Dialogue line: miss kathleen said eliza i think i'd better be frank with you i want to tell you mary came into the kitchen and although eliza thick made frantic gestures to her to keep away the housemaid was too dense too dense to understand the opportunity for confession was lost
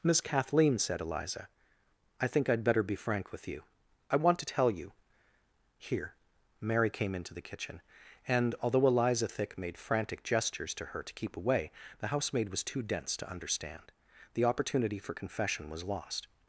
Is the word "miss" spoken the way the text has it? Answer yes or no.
yes